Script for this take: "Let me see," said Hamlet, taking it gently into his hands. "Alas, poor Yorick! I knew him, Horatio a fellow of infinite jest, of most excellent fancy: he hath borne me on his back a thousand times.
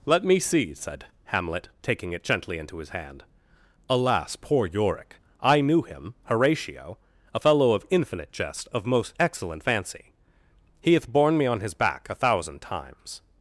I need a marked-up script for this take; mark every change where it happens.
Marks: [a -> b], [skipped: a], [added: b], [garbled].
"Let me see," said Hamlet, taking it gently into his [hands. -> hand] "Alas, poor Yorick! I knew him, Horatio a fellow of infinite jest, of most excellent fancy: he hath borne me on his back a thousand times.